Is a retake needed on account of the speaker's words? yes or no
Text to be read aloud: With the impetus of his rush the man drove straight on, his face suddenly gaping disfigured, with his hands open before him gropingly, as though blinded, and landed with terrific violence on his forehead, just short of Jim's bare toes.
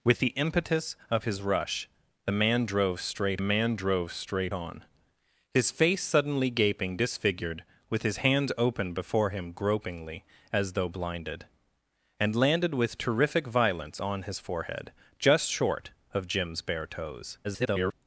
yes